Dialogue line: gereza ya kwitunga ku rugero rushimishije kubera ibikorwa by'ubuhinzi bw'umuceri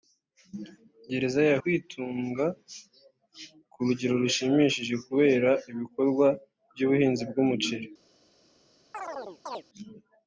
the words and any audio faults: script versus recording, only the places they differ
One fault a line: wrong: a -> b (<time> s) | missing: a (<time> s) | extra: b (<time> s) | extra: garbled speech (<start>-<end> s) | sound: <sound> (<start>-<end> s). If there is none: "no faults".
sound: chirp (8.9-9.6 s)